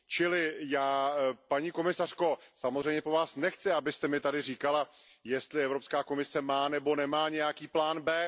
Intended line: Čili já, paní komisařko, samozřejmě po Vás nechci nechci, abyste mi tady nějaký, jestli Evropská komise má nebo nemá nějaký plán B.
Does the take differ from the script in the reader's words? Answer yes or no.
yes